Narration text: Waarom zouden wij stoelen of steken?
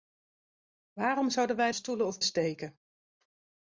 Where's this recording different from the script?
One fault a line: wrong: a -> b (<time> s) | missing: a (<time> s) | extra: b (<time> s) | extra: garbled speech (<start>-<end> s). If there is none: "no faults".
no faults